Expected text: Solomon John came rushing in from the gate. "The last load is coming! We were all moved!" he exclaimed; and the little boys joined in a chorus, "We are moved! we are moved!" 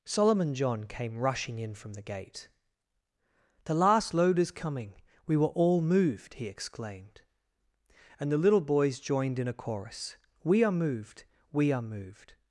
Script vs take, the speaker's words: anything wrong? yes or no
no